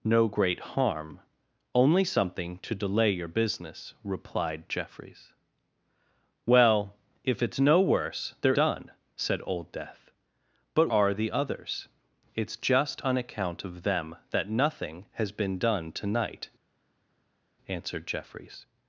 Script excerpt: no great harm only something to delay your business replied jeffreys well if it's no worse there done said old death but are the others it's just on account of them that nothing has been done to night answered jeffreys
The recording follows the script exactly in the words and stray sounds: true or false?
true